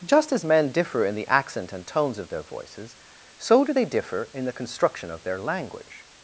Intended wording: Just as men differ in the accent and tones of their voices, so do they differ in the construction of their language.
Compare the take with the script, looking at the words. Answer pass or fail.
pass